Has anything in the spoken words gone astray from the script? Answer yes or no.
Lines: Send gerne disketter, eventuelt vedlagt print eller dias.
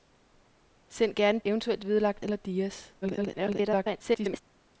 yes